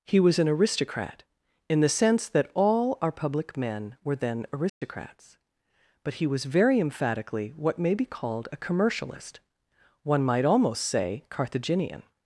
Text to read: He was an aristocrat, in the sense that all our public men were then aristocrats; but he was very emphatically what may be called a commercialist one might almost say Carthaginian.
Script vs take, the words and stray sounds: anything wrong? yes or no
yes